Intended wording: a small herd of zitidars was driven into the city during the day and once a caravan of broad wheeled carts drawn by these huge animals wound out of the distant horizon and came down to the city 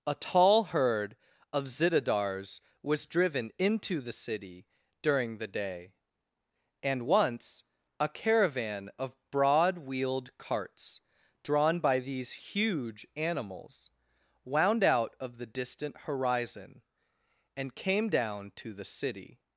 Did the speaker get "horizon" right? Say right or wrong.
right